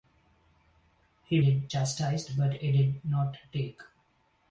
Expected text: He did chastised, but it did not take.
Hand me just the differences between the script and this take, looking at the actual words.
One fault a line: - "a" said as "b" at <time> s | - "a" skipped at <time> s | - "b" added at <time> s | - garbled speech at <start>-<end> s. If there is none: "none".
none